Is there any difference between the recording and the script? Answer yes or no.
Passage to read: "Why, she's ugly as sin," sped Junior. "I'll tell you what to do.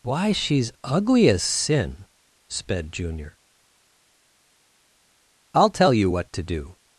no